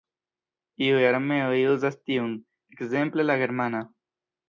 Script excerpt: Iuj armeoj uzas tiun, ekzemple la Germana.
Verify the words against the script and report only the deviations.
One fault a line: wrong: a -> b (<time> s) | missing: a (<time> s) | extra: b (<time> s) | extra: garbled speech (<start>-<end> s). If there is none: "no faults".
no faults